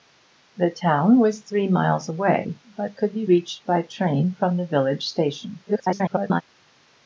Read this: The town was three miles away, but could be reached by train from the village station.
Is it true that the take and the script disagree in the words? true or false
true